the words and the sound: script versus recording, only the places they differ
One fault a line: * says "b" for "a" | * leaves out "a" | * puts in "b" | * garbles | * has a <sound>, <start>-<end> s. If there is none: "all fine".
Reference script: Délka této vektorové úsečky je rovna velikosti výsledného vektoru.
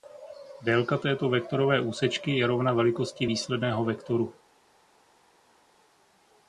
all fine